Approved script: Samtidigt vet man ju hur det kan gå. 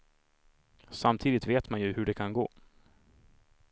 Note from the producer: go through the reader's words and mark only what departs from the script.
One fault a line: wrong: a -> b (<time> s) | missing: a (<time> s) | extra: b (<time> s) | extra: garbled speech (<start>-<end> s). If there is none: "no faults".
no faults